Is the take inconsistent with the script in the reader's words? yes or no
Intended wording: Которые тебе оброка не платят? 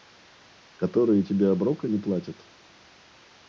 no